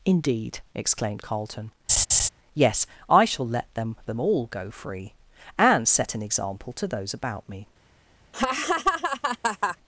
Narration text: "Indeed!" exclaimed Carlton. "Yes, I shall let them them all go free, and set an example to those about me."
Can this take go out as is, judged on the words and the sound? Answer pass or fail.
fail